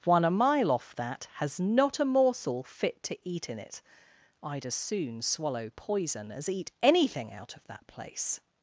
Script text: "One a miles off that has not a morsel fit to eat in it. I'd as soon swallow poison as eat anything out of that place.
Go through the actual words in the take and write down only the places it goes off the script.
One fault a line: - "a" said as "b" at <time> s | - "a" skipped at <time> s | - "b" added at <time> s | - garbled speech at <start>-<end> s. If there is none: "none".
- "miles" said as "mile" at 0.3 s